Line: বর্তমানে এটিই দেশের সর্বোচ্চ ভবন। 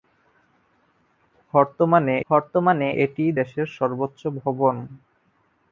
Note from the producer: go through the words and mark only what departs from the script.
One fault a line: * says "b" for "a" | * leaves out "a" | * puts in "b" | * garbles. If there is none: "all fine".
* puts in "বর্তমানে"